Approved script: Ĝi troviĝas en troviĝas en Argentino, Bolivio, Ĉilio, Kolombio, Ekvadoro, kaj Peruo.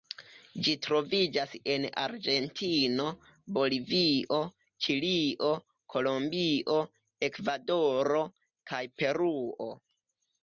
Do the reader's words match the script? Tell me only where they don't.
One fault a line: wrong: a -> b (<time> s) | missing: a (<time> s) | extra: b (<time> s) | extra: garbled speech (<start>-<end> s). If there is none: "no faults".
missing: troviĝas en (1.8 s)